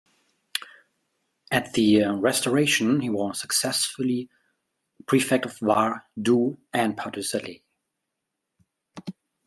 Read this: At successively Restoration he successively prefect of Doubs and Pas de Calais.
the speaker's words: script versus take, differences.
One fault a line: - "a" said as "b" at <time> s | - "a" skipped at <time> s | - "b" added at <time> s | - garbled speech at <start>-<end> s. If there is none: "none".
- "successively" said as "the" at 1.7 s
- "was" added at 3.1 s
- "Var" added at 5.6 s